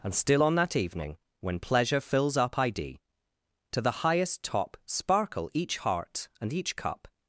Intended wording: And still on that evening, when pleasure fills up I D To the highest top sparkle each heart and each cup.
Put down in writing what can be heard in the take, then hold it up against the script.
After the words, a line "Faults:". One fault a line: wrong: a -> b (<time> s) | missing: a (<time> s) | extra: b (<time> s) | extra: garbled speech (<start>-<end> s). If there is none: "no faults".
And still on that evening, when pleasure fills up I D To the highest top sparkle each heart and each cup.
Faults:
no faults